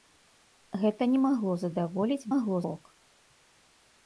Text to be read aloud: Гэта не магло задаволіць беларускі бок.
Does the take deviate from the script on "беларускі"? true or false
true